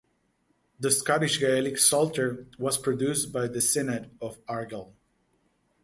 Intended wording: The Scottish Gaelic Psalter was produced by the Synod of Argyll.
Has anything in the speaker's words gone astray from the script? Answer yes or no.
no